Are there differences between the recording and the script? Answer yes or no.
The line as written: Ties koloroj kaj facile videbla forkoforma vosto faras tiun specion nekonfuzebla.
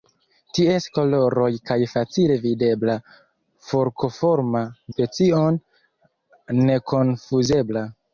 yes